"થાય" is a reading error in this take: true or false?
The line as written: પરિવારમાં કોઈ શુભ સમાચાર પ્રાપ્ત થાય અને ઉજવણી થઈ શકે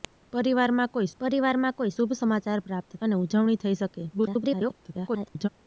true